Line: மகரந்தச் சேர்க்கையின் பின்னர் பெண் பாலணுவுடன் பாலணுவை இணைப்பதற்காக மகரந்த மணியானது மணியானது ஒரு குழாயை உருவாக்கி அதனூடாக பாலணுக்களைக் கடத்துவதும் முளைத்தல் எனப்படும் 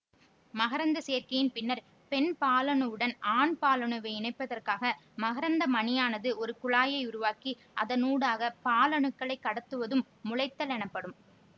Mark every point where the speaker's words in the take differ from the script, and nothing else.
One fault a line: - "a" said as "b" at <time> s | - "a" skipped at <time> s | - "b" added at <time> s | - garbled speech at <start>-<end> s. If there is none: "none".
- "ஆண்" added at 3.3 s
- "மணியானது" skipped at 6.3 s